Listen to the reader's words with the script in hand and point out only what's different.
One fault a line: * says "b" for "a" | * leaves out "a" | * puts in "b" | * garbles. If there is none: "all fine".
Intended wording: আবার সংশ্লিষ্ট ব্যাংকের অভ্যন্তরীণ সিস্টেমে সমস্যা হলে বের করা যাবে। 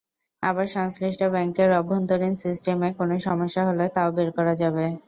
* puts in "কোনো"
* puts in "তাও"